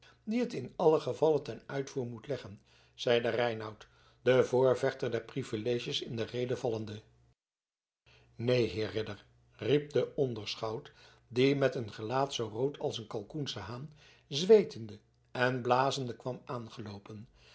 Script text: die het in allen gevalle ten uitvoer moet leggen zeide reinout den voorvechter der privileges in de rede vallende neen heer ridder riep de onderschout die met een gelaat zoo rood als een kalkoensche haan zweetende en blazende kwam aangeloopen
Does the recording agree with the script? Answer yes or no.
yes